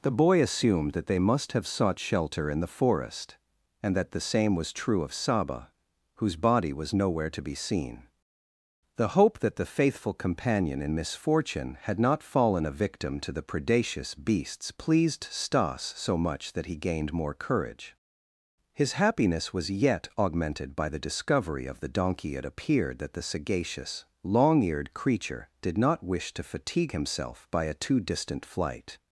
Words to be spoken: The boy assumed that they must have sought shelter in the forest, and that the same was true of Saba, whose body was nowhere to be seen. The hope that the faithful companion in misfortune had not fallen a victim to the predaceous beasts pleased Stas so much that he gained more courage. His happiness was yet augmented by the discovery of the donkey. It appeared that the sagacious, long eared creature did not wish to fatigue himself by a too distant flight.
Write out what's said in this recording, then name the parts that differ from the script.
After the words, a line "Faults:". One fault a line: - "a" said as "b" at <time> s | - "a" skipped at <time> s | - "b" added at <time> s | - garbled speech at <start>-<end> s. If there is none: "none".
The boy assumed that they must have sought shelter in the forest, and that the same was true of Saba, whose body was nowhere to be seen. The hope that the faithful companion in misfortune had not fallen a victim to the predaceous beasts pleased Stas so much that he gained more courage. His happiness was yet augmented by the discovery of the donkey. It appeared that the sagacious, long eared creature did not wish to fatigue himself by a too distant flight.
Faults:
none